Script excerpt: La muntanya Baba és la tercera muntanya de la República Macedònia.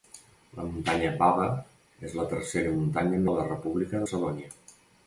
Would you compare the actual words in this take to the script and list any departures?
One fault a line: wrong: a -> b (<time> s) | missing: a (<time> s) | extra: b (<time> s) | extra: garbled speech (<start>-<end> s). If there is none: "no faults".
no faults